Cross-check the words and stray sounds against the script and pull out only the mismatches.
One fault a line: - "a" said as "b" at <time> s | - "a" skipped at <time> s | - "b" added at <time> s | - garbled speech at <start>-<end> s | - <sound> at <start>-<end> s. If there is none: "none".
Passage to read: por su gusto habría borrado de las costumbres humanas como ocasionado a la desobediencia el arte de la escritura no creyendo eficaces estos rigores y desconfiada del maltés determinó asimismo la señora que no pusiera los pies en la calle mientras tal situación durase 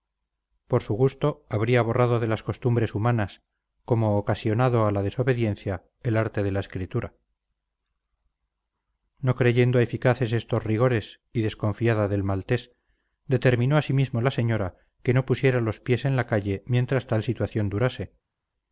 none